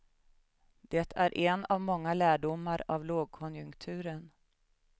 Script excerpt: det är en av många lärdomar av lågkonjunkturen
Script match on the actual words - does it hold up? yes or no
yes